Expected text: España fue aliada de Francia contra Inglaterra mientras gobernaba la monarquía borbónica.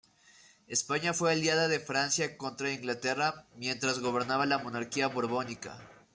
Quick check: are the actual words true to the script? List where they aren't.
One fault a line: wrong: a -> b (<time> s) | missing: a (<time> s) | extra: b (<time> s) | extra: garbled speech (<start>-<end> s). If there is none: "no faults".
no faults